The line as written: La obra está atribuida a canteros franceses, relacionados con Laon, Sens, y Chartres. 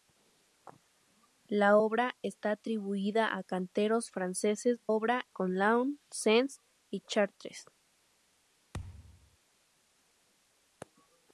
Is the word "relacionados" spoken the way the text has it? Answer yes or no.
no